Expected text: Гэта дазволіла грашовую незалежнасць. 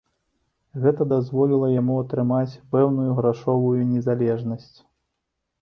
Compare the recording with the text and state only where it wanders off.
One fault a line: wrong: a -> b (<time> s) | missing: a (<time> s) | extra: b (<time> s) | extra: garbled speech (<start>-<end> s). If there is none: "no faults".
extra: яму атрымаць пэўную (1.8 s)